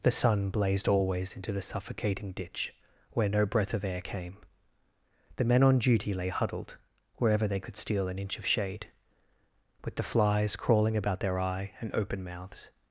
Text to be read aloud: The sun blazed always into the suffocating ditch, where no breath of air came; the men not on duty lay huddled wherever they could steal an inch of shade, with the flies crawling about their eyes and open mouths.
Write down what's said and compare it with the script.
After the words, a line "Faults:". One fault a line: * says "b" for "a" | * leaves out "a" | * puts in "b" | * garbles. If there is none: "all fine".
The sun blazed always into the suffocating ditch, where no breath of air came; the men on duty lay huddled wherever they could steal an inch of shade, with the flies crawling about their eye and open mouths.
Faults:
* leaves out "not"
* says "eye" for "eyes"